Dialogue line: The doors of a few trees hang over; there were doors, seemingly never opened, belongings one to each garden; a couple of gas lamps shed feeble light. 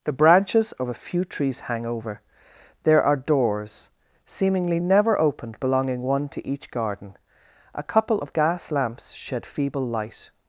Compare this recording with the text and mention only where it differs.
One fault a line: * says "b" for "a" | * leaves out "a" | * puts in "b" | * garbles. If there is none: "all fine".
* says "branches" for "doors"
* says "are" for "were"
* says "belonging" for "belongings"